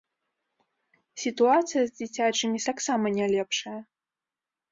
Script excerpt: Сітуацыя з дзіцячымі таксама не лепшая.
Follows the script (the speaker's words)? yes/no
yes